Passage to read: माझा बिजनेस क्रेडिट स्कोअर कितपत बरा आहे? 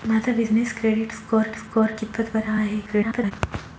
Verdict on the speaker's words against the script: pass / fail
fail